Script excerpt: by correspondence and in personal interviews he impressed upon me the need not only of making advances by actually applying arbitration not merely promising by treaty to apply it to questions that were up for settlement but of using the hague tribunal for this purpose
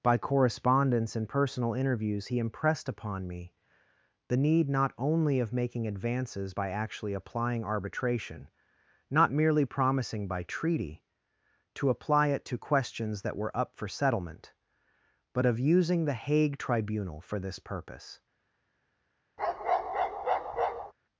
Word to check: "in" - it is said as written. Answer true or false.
false